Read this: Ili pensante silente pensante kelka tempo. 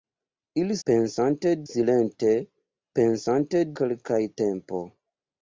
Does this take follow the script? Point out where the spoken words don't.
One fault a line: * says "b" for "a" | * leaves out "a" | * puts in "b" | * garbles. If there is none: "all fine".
all fine